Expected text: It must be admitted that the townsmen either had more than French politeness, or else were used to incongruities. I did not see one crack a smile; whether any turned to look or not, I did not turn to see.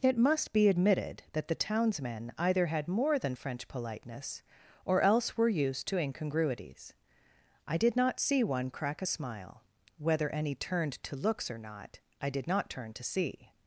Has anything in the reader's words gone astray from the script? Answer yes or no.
yes